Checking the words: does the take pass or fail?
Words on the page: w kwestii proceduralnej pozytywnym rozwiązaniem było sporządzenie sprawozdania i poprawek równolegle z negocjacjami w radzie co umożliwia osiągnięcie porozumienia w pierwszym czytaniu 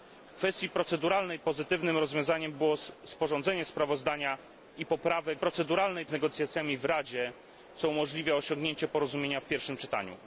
fail